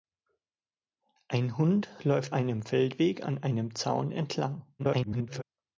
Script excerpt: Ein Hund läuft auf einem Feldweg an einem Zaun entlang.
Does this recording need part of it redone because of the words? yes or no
yes